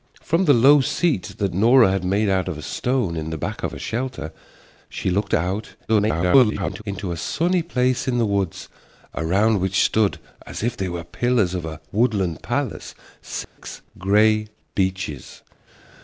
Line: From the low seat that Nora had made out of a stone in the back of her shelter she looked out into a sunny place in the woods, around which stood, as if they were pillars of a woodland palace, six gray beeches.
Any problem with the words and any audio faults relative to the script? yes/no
yes